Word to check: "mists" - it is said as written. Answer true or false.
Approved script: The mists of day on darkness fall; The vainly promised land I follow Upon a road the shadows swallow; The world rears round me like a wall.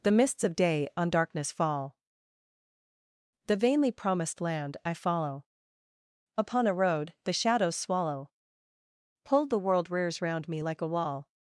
true